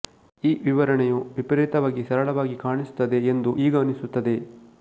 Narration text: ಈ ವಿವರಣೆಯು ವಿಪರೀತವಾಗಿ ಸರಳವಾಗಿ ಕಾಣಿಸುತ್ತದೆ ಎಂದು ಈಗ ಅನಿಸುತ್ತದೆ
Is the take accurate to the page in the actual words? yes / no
yes